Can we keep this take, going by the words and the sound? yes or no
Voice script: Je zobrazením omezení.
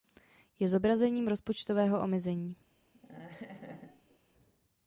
no